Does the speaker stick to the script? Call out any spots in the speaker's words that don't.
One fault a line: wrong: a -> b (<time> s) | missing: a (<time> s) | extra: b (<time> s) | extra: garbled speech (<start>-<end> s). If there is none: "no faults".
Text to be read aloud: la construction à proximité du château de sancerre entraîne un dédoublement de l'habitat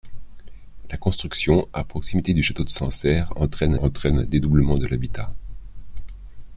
extra: entraîne (3.8 s)